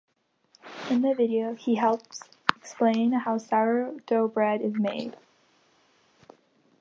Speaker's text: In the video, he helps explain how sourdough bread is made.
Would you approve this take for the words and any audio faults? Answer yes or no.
yes